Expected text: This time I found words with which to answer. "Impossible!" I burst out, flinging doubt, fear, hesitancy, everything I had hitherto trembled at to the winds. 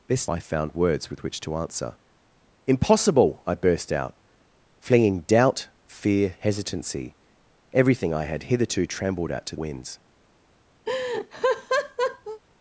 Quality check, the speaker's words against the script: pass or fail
fail